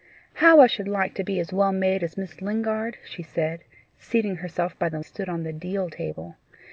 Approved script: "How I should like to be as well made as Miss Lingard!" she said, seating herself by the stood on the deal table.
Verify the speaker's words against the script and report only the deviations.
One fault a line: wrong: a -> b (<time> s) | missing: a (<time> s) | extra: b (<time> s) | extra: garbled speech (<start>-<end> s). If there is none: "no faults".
no faults